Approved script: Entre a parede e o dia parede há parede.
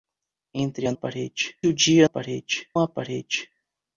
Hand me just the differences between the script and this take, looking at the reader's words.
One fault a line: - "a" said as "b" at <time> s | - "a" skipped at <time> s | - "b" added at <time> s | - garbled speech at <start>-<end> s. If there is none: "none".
none